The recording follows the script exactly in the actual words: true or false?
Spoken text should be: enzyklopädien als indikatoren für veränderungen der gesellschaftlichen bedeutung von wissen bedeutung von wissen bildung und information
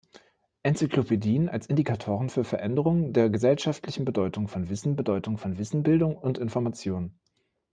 true